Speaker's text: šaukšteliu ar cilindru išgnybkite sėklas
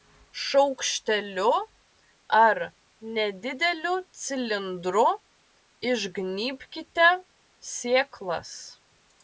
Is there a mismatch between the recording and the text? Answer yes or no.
yes